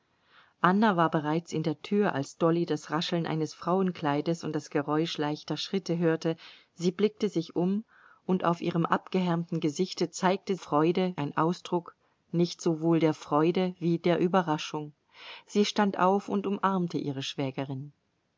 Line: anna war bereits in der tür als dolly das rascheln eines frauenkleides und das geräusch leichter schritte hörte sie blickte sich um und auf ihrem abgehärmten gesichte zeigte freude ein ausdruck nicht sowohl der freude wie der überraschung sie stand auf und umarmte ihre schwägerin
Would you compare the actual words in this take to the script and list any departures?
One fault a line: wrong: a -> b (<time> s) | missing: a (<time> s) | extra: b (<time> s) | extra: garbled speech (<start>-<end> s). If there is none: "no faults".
no faults